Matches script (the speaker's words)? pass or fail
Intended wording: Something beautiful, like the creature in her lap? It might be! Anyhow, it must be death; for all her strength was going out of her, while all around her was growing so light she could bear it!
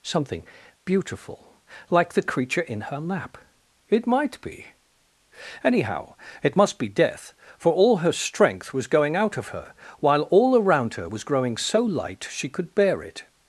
pass